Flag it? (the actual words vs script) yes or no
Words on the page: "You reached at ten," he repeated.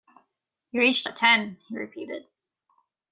no